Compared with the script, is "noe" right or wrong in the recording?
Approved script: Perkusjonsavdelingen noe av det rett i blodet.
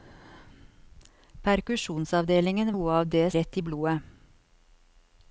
right